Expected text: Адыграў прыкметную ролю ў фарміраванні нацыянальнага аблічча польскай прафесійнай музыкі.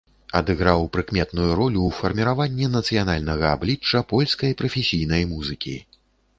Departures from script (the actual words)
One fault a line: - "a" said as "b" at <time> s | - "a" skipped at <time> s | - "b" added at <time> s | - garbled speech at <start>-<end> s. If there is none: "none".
none